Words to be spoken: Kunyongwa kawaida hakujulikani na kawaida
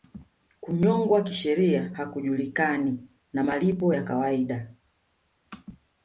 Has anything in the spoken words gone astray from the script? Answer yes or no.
yes